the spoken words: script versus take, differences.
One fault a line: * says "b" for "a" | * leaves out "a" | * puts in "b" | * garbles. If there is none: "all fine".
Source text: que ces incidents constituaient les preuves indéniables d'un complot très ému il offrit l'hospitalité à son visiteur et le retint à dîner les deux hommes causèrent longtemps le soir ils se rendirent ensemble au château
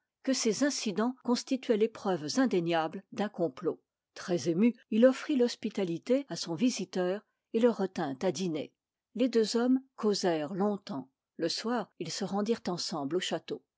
all fine